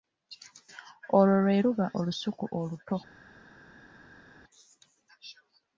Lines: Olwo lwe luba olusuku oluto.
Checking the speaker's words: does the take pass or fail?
pass